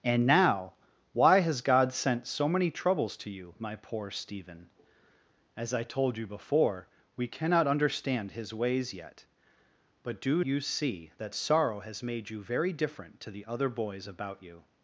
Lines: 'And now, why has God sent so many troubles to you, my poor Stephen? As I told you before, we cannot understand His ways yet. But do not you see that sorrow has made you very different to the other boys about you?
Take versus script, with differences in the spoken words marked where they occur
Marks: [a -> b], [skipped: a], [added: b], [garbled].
'And now, why has God sent so many troubles to you, my poor Stephen? As I told you before, we cannot understand His ways yet. But do [skipped: not] you see that sorrow has made you very different to the other boys about you?